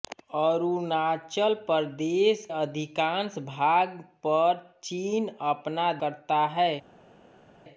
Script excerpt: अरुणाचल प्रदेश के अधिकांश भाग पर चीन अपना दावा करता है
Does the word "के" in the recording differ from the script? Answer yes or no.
yes